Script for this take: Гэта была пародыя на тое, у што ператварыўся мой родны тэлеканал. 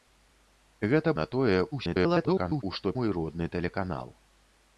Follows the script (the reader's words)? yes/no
no